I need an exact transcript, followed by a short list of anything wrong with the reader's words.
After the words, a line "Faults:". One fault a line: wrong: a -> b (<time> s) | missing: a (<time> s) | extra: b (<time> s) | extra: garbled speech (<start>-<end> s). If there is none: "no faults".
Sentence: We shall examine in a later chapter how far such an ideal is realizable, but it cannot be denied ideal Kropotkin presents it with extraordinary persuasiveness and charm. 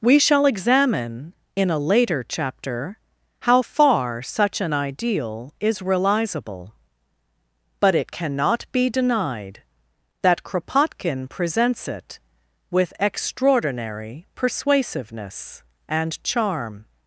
We shall examine in a later chapter how far such an ideal is realizable, but it cannot be denied that Kropotkin presents it with extraordinary persuasiveness and charm.
Faults:
wrong: ideal -> that (10.2 s)